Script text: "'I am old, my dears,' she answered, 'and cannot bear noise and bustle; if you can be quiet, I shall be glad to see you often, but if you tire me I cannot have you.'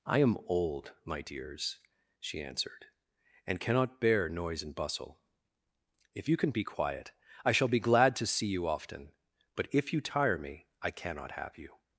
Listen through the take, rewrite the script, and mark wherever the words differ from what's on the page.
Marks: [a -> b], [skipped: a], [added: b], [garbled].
"'I am old, my dears,' she answered, 'and cannot bear noise and bustle; if you can be quiet, I shall be glad to see you often, but if you tire me I cannot have you.'